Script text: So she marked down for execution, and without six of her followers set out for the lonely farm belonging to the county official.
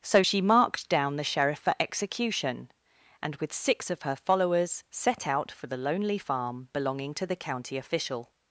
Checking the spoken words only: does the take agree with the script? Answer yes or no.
no